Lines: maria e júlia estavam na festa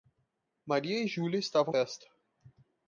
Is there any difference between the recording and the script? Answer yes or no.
yes